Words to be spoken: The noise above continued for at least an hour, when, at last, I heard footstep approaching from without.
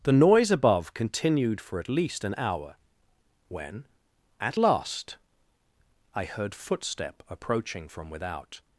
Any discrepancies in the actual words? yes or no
no